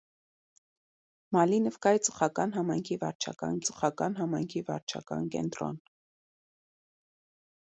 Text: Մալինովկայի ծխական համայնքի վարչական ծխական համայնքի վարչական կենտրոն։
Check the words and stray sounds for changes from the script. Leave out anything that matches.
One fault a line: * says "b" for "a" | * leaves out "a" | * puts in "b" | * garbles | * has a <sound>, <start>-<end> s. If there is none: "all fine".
all fine